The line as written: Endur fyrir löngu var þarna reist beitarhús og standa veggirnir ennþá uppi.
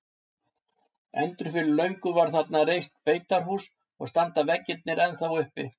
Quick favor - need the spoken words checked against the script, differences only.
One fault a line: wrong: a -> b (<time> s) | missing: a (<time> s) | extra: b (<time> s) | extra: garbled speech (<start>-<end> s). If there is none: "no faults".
no faults